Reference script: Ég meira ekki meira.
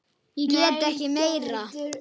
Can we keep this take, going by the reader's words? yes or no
no